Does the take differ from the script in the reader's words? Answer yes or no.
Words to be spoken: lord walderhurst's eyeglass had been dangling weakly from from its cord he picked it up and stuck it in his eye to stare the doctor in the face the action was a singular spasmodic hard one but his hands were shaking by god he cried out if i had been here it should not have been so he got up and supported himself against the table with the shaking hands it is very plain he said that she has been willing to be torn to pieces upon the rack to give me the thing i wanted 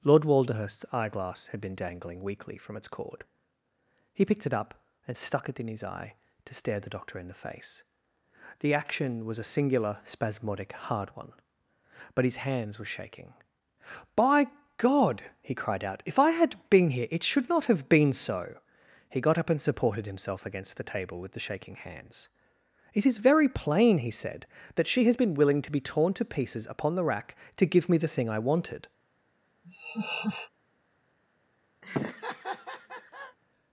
yes